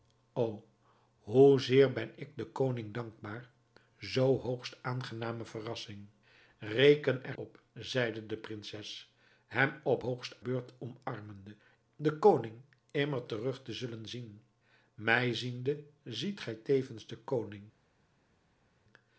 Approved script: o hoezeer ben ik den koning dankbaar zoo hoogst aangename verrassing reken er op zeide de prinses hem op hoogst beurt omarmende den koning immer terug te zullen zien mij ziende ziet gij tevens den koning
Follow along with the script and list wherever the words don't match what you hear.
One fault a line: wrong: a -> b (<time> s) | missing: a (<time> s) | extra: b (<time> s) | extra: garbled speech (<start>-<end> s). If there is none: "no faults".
no faults